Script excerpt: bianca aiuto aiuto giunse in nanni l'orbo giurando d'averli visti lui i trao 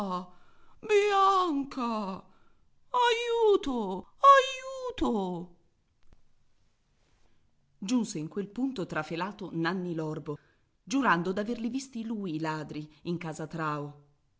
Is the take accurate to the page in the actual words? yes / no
no